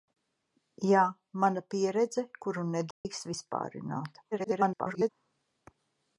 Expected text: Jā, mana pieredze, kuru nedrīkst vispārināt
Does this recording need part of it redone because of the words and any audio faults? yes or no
yes